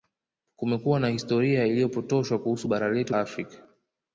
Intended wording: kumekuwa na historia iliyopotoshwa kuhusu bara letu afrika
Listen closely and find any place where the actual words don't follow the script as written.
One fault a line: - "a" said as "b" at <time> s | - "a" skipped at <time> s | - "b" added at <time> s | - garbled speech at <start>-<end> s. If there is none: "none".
none